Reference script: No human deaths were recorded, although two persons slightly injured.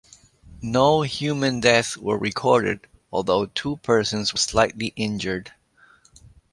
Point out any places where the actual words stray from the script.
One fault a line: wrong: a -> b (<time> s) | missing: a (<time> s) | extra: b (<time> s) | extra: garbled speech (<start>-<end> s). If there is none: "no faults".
no faults